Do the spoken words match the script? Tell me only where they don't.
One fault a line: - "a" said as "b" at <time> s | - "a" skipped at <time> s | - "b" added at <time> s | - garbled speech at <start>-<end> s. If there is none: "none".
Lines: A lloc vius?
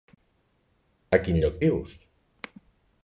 - "quin" added at 1.3 s